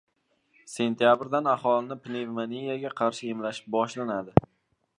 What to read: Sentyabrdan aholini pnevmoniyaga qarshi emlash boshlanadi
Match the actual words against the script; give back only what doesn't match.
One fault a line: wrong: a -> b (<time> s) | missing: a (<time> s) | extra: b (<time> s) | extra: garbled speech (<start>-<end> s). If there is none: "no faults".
no faults